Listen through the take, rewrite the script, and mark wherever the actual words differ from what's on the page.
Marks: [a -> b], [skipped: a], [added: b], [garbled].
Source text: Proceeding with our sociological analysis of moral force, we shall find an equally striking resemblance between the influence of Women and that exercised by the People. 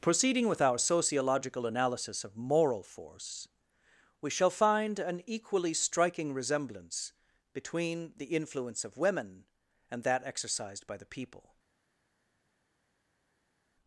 Proceeding with our sociological analysis of moral force, we shall find an equally striking resemblance between the influence of Women and that exercised by the People.